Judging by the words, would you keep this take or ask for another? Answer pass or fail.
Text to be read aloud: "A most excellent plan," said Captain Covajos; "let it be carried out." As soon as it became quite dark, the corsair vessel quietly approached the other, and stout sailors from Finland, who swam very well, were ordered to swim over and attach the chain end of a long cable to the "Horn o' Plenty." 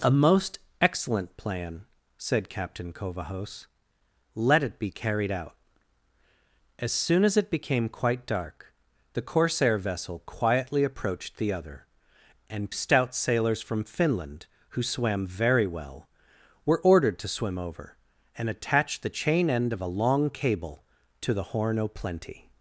pass